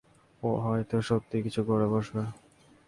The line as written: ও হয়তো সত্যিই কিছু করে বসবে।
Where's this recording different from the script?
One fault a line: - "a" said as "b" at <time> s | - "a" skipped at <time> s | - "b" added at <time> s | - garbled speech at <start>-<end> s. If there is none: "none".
none